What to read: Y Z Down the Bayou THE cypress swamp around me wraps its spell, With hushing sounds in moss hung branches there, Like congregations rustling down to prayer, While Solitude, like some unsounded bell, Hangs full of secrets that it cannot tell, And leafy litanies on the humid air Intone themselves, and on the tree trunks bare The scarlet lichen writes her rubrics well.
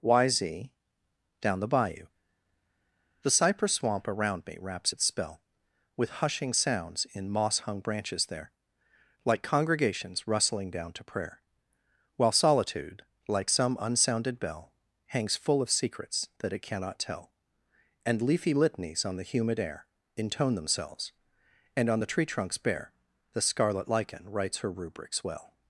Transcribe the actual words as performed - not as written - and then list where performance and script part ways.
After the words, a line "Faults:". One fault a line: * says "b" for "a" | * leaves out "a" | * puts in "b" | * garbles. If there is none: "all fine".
Y Z Down the Bayou THE cypress swamp around me wraps its spell, With hushing sounds in moss hung branches there, Like congregations rustling down to prayer, While Solitude, like some unsounded bell, Hangs full of secrets that it cannot tell, And leafy litanies on the humid air Intone themselves, and on the tree trunks bare The scarlet lichen writes her rubrics well.
Faults:
all fine